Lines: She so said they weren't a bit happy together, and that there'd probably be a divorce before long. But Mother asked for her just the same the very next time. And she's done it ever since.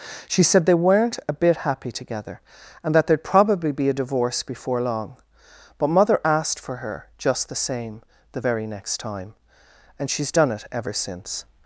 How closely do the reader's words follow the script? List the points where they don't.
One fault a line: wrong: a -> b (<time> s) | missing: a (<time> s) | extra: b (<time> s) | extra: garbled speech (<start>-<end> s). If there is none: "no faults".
missing: so (0.4 s)